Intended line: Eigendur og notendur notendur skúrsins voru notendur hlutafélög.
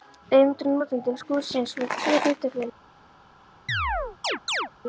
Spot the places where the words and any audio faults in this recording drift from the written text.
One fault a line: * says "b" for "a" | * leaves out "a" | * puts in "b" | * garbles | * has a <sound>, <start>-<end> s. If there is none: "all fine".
* leaves out "notendur"
* says "tvö" for "notendur"
* has a chirp, 3.7-4.7 s